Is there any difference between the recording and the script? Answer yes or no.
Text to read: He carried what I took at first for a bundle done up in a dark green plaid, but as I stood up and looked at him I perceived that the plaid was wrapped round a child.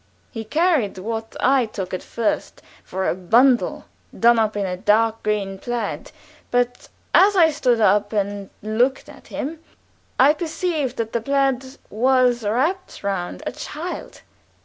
no